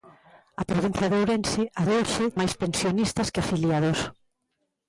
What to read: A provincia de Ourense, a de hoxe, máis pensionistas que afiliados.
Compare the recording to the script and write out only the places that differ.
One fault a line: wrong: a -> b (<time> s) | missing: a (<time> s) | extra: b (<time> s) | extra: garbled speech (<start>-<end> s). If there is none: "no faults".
no faults